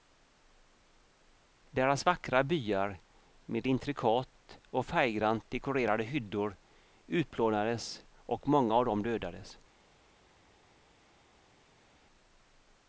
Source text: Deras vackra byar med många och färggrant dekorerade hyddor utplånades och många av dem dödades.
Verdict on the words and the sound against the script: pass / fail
fail